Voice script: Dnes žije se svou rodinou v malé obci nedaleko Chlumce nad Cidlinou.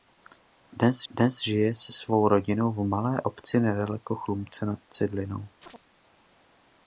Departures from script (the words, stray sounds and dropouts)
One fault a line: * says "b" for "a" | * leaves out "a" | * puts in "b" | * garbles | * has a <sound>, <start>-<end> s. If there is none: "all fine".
* puts in "dnes"
* has a chirp, 5.6-5.8 s